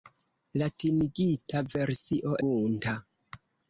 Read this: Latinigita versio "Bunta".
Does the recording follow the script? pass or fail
pass